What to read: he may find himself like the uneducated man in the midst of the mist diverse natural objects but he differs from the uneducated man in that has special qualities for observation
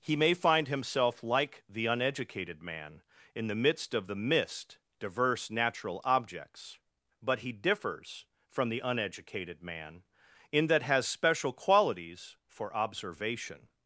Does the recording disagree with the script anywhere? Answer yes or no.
no